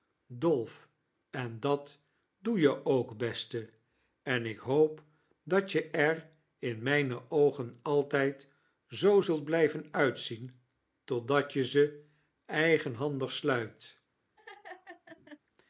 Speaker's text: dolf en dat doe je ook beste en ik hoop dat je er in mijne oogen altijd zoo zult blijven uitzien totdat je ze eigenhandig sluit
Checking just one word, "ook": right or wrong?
right